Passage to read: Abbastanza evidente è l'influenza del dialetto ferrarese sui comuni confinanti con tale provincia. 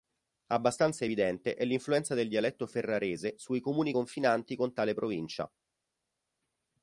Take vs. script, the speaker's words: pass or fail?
pass